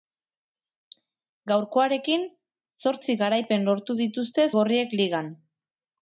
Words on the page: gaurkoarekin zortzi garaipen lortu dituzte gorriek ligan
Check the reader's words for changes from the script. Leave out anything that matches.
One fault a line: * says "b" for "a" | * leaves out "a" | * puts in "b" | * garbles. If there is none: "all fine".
all fine